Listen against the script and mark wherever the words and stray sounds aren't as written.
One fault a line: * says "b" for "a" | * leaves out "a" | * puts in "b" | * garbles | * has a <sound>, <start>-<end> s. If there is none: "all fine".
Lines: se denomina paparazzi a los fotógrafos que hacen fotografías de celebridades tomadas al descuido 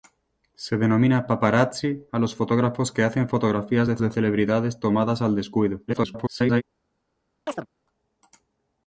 * puts in "de"
* garbles
* has a chirp, 7.5-7.7 s